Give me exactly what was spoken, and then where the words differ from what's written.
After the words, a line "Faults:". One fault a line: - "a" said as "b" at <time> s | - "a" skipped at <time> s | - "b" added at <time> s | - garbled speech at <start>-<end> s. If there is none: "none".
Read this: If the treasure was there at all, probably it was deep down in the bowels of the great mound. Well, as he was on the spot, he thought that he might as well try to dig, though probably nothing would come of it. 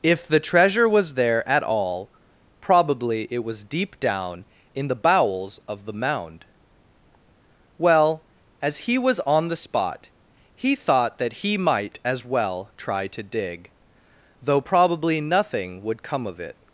If the treasure was there at all, probably it was deep down in the bowels of the mound. Well, as he was on the spot, he thought that he might as well try to dig, though probably nothing would come of it.
Faults:
- "great" skipped at 5.9 s